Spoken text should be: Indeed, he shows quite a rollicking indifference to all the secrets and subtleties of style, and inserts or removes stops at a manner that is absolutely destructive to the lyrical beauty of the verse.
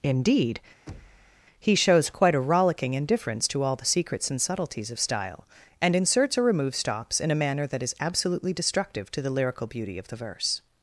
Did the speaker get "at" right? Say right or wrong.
wrong